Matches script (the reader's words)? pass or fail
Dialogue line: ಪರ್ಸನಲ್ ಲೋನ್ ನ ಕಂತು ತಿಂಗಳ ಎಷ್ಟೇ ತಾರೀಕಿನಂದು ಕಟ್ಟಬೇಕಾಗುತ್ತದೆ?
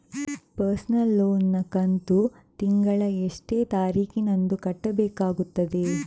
pass